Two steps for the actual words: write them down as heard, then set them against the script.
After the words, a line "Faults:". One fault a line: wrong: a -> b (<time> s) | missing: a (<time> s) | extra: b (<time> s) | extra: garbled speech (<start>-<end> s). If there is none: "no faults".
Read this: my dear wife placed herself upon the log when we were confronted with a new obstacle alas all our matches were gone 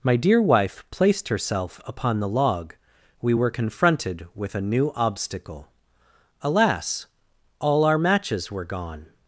my dear wife placed herself upon the log we were confronted with a new obstacle alas all our matches were gone
Faults:
missing: when (2.8 s)